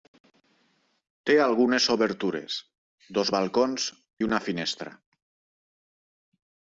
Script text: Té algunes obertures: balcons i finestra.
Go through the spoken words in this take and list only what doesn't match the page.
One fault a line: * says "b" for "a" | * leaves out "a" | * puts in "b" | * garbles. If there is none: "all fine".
* puts in "dos"
* puts in "una"